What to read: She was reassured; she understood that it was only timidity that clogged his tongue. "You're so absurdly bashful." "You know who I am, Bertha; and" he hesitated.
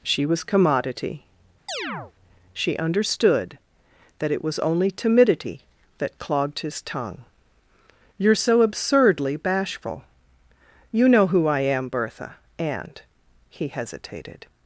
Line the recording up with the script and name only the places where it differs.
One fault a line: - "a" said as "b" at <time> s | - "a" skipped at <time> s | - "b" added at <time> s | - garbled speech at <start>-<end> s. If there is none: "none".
- "reassured" said as "commodity" at 0.4 s